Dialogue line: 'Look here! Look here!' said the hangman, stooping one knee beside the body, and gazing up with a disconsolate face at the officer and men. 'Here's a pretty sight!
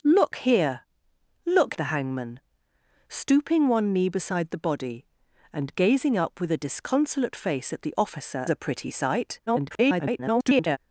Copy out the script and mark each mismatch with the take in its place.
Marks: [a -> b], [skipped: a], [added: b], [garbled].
'Look here! Look [skipped: here!' said] the hangman, stooping one knee beside the body, and gazing up with a disconsolate face at the officer [skipped: and men. 'Here's] a pretty sight! [garbled]